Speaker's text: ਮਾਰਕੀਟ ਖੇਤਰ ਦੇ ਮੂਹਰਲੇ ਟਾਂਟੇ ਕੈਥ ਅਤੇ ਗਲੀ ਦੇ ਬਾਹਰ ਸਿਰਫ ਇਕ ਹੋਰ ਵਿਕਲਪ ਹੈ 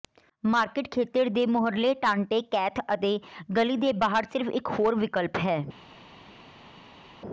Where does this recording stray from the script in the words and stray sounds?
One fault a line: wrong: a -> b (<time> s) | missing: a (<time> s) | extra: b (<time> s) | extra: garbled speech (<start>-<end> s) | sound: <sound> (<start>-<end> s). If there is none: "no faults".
no faults